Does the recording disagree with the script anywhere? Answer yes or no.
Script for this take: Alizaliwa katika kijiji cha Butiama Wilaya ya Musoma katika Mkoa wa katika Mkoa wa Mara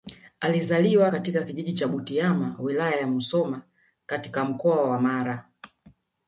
yes